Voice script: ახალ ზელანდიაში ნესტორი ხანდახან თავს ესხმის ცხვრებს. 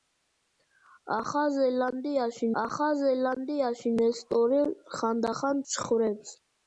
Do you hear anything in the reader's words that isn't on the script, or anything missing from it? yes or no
yes